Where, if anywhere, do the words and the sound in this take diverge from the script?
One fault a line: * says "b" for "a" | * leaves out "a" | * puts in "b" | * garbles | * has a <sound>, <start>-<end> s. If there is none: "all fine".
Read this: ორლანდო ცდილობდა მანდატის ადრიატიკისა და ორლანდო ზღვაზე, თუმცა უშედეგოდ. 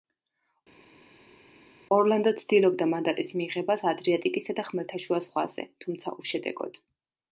* puts in "მიღებას"
* says "ხმელთაშუა" for "ორლანდო"